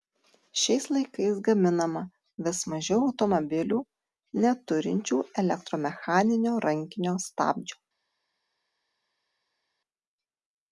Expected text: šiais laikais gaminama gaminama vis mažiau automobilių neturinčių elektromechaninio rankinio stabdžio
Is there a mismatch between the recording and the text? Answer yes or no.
yes